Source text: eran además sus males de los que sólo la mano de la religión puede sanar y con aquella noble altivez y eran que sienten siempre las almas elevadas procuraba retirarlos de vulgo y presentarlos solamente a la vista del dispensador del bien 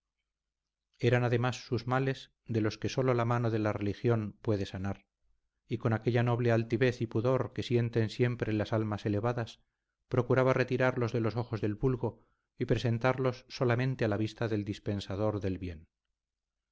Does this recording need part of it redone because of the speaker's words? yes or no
yes